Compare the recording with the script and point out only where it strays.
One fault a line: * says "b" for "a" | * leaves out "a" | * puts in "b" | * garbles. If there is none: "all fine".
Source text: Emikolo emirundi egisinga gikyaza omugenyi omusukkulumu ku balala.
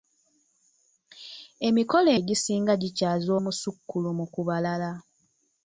* leaves out "emirundi"
* leaves out "omugenyi"